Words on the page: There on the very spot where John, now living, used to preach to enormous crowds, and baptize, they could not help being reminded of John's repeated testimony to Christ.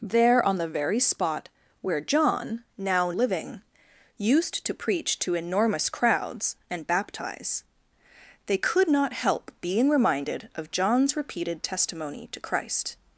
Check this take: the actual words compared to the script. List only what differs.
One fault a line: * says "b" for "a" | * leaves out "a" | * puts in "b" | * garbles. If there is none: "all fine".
all fine